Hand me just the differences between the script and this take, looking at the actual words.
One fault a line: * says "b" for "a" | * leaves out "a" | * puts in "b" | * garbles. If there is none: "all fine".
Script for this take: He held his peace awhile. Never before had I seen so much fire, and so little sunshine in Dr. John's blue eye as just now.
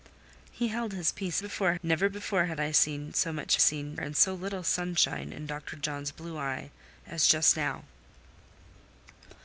* says "before" for "awhile"
* says "seen" for "fire"